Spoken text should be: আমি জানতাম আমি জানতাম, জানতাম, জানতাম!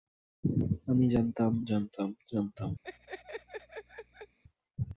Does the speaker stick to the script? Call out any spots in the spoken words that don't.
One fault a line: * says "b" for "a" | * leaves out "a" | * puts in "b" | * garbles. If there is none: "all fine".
* leaves out "আমি জানতাম"